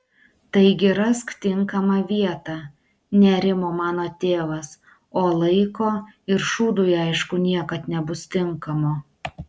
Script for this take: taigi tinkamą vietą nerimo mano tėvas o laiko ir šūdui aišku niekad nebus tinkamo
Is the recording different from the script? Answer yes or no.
yes